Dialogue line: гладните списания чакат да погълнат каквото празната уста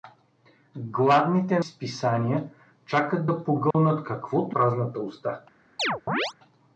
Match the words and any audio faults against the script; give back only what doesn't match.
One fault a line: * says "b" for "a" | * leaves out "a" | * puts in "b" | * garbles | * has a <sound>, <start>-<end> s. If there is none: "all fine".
* has a dropout, 3.7-3.7 s
* has a chirp, 5.8-6.3 s